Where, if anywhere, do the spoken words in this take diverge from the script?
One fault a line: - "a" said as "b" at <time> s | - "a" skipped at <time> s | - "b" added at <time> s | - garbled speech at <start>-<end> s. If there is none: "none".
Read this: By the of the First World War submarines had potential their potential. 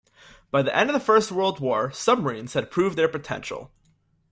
- "end" added at 0.8 s
- "potential" said as "proved" at 2.7 s